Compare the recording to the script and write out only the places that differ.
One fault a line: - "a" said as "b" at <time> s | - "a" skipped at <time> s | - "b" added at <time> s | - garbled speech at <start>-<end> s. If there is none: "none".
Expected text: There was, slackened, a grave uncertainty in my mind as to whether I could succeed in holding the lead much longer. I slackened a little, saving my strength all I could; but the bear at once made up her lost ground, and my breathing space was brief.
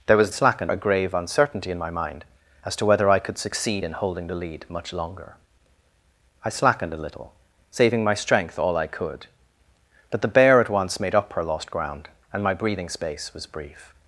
none